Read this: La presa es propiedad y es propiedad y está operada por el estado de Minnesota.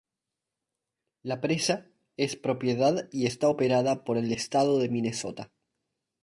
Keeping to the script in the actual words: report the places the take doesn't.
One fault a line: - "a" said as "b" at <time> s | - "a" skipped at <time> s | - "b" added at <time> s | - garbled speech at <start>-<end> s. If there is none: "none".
- "es propiedad y" skipped at 3.3 s